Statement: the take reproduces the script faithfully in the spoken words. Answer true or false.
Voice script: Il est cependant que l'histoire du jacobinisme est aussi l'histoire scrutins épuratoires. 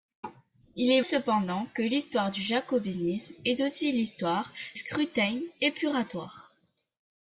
true